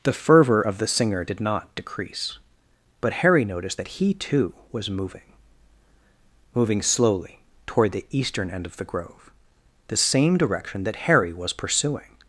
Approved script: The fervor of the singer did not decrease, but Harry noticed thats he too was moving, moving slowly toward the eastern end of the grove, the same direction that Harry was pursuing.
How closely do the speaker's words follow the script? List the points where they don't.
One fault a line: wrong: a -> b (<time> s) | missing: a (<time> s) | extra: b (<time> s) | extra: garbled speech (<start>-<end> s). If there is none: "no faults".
wrong: thats -> that (3.8 s)